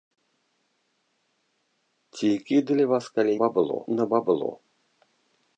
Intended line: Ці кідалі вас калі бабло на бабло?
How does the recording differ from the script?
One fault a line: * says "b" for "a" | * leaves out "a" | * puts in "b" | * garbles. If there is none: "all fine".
all fine